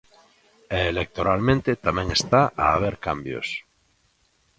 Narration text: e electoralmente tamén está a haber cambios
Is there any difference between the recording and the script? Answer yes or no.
no